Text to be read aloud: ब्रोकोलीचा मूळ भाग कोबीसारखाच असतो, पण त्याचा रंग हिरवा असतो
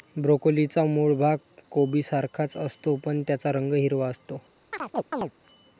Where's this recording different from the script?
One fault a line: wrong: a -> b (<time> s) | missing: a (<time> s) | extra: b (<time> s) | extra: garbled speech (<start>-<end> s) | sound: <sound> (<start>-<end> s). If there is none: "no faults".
sound: chirp (4.7-5.3 s)